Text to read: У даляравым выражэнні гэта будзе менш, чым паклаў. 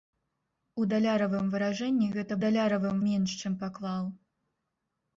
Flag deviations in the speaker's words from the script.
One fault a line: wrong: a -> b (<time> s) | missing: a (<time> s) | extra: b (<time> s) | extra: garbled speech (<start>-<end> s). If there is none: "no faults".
wrong: будзе -> даляравым (2.4 s)